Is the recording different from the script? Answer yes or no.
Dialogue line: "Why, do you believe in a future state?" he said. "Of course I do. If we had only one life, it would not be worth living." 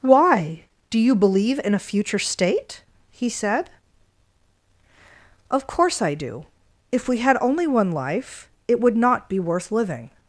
no